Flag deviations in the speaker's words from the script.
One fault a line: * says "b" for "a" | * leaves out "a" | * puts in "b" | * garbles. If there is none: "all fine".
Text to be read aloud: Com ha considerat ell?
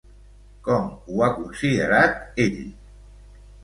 * puts in "ho"